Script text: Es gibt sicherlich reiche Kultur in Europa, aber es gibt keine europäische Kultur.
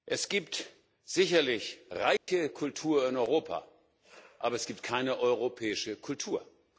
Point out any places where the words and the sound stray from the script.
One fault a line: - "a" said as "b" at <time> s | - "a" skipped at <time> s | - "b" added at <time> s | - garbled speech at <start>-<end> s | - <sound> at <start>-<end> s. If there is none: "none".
- dropout at 2.2-2.3 s